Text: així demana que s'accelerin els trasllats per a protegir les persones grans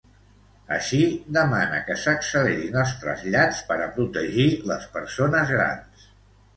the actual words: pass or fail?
pass